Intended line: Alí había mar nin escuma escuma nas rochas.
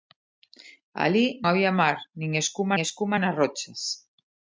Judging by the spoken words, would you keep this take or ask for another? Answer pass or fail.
pass